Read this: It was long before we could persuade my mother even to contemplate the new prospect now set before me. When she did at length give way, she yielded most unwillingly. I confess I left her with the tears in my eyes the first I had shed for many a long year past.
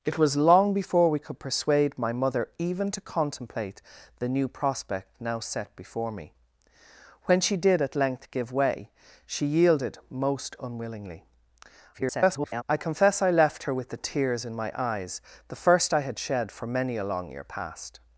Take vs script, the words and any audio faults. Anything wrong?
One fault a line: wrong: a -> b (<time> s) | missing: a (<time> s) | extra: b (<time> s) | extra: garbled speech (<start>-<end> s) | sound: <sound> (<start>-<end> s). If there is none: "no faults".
extra: garbled speech (11.9-12.6 s)